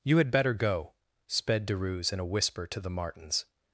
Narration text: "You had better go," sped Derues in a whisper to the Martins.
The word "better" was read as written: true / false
true